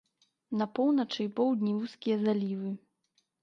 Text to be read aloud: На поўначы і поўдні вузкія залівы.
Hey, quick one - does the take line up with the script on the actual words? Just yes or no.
yes